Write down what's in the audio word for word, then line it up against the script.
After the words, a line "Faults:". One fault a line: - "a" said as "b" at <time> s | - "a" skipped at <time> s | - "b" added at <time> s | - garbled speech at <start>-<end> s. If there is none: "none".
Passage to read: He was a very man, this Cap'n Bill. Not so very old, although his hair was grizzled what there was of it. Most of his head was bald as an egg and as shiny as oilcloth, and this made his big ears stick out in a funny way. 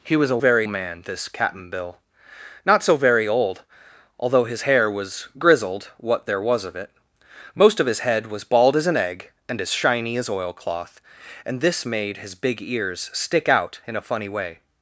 He was a very man, this Cap'n Bill. Not so very old, although his hair was grizzled what there was of it. Most of his head was bald as an egg and as shiny as oilcloth, and this made his big ears stick out in a funny way.
Faults:
none